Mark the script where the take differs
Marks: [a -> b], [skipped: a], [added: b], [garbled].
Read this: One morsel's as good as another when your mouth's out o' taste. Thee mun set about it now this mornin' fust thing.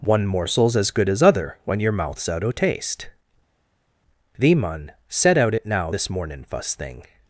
One morsel's as good as [another -> other] when your mouth's out o' taste. Thee mun set [about -> out] it now this mornin' fust thing.